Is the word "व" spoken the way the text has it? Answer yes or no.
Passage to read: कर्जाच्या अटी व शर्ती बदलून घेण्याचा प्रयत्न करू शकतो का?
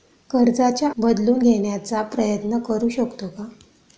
no